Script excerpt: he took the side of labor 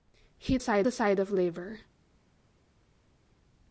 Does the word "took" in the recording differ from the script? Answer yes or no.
yes